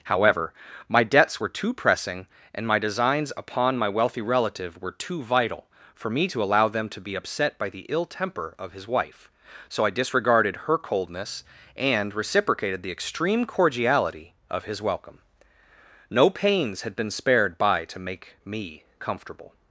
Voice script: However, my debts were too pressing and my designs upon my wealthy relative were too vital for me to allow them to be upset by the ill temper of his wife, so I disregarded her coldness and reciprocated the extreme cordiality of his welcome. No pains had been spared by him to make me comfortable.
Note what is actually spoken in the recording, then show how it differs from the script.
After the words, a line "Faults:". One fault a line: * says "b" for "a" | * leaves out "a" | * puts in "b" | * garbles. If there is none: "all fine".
However, my debts were too pressing and my designs upon my wealthy relative were too vital for me to allow them to be upset by the ill temper of his wife, so I disregarded her coldness and reciprocated the extreme cordiality of his welcome. No pains had been spared by to make me comfortable.
Faults:
* leaves out "him"